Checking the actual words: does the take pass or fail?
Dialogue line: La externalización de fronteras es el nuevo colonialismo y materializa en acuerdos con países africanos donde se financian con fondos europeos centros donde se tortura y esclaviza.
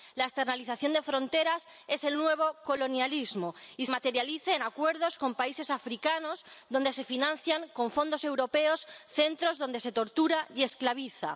pass